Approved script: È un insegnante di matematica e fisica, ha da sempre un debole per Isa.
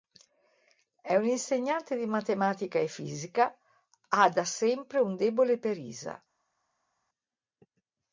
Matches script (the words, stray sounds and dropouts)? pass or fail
pass